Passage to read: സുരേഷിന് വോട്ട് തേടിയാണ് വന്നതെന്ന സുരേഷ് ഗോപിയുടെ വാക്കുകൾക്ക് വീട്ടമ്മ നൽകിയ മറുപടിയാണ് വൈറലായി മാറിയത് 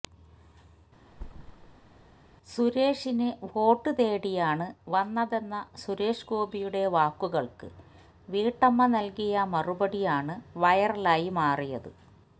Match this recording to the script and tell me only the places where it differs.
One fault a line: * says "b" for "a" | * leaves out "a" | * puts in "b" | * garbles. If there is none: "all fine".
all fine